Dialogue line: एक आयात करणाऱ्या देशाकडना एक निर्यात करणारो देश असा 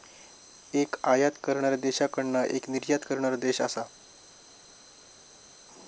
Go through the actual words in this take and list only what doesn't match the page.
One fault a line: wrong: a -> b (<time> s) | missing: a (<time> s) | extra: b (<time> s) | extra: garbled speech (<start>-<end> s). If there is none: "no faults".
no faults